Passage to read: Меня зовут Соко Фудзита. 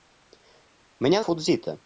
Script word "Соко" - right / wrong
wrong